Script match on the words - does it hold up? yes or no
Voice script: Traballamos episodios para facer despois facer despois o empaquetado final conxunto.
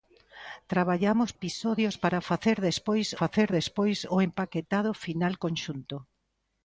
yes